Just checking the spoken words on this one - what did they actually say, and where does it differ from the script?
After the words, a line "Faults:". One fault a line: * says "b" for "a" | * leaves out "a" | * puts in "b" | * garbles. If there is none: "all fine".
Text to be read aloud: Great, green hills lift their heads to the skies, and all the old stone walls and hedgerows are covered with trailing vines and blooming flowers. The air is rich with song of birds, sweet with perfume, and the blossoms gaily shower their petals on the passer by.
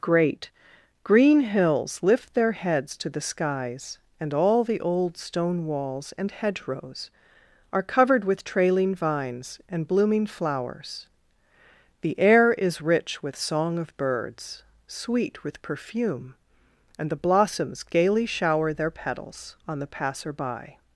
Great, green hills lift their heads to the skies, and all the old stone walls and hedgerows are covered with trailing vines and blooming flowers. The air is rich with song of birds, sweet with perfume, and the blossoms gaily shower their petals on the passer by.
Faults:
all fine